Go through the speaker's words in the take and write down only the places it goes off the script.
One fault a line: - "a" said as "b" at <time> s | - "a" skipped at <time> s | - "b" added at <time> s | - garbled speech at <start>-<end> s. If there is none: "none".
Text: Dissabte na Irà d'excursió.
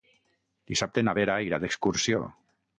- "Vera" added at 1.2 s